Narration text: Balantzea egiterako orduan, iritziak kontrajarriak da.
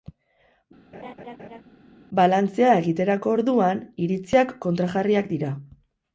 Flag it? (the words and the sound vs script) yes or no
yes